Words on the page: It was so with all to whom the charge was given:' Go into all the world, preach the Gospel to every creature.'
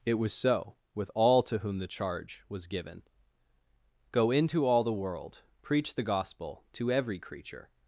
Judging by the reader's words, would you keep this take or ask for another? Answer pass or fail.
pass